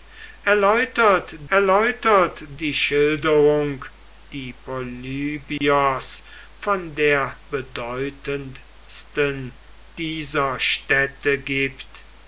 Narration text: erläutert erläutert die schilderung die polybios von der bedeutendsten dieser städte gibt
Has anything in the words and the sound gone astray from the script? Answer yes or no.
yes